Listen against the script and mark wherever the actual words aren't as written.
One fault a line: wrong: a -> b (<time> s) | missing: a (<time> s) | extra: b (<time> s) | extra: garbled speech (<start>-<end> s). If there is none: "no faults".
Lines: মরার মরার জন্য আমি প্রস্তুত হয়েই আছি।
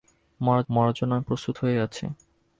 no faults